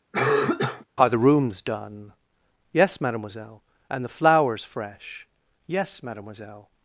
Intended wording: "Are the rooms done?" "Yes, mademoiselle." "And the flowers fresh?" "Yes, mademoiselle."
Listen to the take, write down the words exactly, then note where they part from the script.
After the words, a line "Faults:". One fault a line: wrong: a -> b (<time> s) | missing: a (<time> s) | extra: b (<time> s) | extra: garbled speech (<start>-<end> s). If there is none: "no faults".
"Are the rooms done?" "Yes, mademoiselle." "And the flowers fresh?" "Yes, mademoiselle."
Faults:
no faults